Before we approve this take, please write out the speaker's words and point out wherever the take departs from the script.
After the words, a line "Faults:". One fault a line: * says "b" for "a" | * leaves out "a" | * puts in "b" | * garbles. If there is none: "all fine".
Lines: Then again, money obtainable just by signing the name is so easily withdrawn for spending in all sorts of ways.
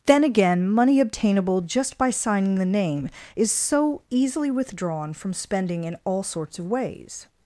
Then again, money obtainable just by signing the name is so easily withdrawn from spending in all sorts of ways.
Faults:
* says "from" for "for"